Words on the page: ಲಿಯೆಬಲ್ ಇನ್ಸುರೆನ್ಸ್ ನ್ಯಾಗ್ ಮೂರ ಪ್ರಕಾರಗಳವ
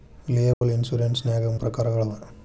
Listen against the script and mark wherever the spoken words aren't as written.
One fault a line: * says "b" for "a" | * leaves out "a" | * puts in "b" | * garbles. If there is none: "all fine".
* leaves out "ಮೂರ"